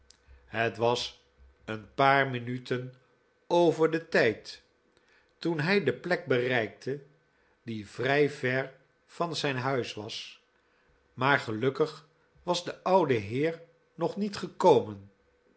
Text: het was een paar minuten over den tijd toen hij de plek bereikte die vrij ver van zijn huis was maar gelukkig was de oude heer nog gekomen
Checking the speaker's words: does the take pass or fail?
fail